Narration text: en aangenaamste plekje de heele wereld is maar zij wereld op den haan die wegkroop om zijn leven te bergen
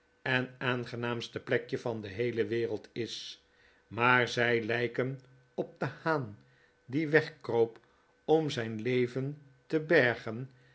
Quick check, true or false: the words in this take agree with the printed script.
false